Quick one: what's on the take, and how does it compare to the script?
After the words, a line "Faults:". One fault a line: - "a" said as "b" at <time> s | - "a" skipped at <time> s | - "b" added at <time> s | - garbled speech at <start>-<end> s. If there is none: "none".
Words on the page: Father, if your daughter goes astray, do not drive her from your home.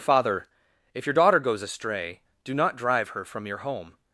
Father, if your daughter goes astray, do not drive her from your home.
Faults:
none